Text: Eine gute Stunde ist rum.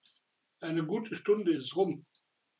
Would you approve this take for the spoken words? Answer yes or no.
yes